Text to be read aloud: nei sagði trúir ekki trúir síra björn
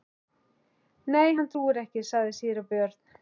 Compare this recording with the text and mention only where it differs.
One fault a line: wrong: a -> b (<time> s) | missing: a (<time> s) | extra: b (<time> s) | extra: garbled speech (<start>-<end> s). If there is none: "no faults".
wrong: sagði -> hann (1.4 s)
wrong: trúir -> sagði (2.1 s)